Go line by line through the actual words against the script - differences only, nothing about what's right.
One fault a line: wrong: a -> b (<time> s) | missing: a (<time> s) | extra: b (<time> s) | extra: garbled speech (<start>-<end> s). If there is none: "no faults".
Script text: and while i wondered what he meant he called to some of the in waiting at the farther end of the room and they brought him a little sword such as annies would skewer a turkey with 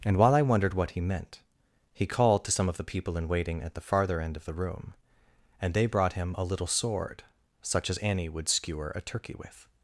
extra: people (2.8 s)
wrong: annies -> annie (8.0 s)